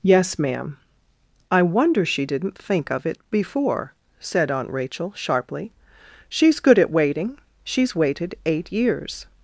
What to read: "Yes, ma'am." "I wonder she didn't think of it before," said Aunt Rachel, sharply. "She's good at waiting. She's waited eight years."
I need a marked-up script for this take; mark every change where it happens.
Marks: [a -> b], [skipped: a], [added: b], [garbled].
"Yes, ma'am." "I wonder she didn't think of it before," said Aunt Rachel, sharply. "She's good at waiting. She's waited eight years."